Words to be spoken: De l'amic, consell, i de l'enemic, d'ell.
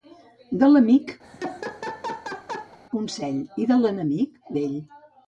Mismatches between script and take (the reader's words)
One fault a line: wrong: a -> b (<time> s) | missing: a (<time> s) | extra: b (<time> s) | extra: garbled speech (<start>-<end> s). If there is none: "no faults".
no faults